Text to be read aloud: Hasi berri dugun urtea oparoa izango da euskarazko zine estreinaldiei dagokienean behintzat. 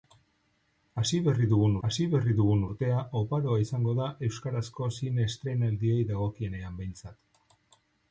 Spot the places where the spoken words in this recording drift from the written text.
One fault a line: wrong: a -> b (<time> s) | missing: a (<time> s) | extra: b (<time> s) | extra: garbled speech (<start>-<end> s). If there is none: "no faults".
extra: hasi berri dugun (1.9 s)